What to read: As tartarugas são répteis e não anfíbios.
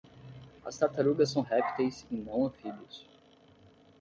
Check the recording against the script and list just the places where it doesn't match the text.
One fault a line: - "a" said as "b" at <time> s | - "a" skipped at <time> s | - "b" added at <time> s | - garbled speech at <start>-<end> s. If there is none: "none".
none